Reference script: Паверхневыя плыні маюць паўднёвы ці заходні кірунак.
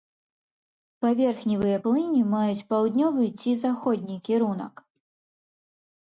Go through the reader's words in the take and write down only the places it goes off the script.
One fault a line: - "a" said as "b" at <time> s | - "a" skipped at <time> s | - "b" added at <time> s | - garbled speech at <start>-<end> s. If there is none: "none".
none